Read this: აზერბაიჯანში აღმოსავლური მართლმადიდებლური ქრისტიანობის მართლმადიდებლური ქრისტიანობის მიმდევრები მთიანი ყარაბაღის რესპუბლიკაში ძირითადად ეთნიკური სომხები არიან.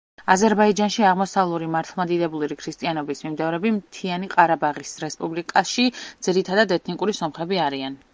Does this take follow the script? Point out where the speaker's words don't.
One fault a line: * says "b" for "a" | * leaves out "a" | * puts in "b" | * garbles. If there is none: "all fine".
* leaves out "მართლმადიდებლური ქრისტიანობის"